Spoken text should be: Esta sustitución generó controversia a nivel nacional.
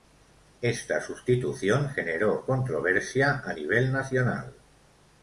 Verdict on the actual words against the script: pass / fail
pass